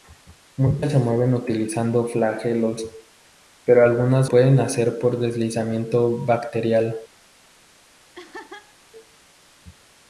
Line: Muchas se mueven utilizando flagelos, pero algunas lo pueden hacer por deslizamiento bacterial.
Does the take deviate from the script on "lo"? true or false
true